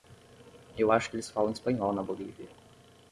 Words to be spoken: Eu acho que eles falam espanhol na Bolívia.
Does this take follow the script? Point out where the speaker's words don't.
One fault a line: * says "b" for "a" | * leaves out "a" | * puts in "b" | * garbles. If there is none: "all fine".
all fine